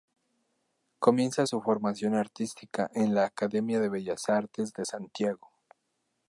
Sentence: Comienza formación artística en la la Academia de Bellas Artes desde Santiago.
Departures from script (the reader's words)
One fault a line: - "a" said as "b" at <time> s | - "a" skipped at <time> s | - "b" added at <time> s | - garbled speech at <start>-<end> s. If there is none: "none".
- "su" added at 1.4 s
- "la" skipped at 3.2 s
- "desde" said as "de" at 4.7 s